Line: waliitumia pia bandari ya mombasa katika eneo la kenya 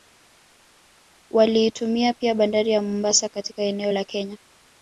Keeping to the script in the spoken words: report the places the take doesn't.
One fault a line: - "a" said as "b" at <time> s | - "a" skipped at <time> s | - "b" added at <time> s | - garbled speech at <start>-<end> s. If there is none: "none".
none